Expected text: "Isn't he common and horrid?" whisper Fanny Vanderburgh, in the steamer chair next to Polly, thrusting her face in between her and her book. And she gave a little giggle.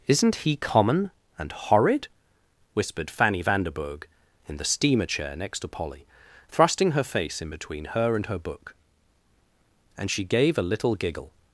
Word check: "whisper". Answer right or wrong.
wrong